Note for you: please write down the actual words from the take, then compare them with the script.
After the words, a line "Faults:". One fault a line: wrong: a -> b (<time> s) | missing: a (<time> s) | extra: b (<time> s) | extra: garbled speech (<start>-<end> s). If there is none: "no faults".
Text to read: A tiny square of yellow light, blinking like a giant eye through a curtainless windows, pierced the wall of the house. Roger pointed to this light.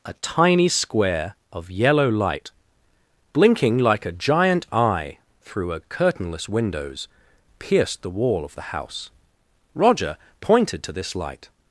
A tiny square of yellow light, blinking like a giant eye through a curtainless windows, pierced the wall of the house. Roger pointed to this light.
Faults:
no faults